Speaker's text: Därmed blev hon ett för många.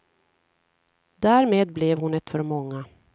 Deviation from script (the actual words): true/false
false